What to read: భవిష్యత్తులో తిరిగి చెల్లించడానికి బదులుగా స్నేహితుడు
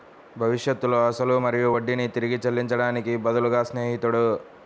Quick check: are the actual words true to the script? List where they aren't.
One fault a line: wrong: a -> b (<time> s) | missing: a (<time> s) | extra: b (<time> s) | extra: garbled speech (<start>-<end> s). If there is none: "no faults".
extra: అసలు మరియు వడ్డీని (1.1 s)